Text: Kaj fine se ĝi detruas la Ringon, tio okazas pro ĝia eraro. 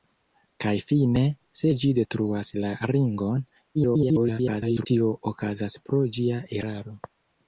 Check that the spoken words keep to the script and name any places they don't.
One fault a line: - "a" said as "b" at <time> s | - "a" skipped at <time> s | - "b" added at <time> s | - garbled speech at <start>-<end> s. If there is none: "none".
- garbled speech at 3.7-4.9 s